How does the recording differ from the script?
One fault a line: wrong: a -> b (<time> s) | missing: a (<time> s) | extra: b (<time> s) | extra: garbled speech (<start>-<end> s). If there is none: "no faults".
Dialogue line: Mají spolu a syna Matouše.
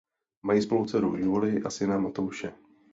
extra: dceru Julii (0.8 s)